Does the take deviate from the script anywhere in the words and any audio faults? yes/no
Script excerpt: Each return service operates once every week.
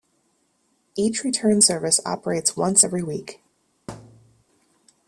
yes